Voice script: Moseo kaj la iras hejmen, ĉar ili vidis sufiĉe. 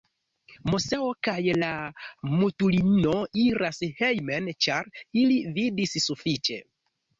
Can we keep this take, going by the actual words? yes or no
no